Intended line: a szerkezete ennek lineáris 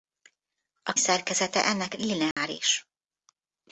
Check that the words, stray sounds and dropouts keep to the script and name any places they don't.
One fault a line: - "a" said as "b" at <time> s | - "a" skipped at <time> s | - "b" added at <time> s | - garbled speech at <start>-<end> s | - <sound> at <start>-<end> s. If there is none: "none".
- dropout at 2.3-2.4 s